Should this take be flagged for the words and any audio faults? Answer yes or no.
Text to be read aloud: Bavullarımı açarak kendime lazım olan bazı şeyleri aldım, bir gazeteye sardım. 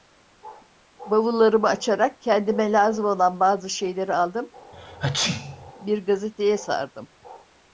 yes